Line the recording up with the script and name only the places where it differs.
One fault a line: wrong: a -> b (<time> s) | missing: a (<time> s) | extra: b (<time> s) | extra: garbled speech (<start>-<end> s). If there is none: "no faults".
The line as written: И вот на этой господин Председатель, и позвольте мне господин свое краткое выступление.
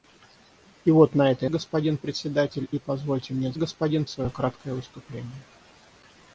no faults